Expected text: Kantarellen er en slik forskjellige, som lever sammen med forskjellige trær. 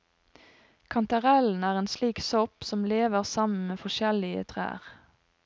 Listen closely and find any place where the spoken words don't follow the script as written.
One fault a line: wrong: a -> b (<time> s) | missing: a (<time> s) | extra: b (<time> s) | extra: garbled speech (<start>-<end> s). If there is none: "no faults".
wrong: forskjellige -> sopp (2.3 s)